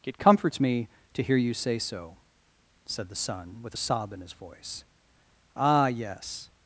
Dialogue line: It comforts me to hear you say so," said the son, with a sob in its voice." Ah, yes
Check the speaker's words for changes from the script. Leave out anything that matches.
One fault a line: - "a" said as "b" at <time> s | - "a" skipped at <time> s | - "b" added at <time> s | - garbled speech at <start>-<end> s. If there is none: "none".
- "its" said as "his" at 4.2 s